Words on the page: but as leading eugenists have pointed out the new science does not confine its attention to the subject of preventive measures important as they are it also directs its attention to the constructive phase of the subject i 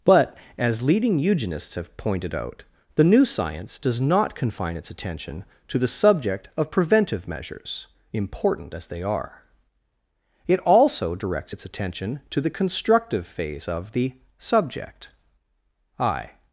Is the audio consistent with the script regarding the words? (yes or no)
yes